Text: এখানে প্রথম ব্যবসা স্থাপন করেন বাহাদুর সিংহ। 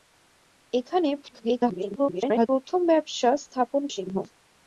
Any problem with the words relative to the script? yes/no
yes